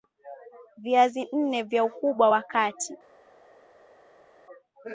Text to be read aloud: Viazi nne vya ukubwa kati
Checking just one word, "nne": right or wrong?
right